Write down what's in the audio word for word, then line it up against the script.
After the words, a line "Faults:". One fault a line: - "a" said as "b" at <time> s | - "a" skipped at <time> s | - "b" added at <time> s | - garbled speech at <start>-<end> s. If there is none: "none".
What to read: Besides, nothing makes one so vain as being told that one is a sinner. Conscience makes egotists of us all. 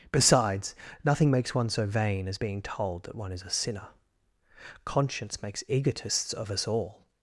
Besides, nothing makes one so vain as being told that one is a sinner. Conscience makes egotists of us all.
Faults:
none